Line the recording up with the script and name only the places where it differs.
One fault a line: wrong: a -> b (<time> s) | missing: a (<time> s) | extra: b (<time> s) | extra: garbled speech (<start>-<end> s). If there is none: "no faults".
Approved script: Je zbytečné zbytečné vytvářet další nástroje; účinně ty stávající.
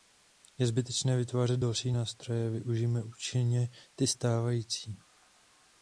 missing: zbytečné (1.2 s)
extra: využijme (2.5 s)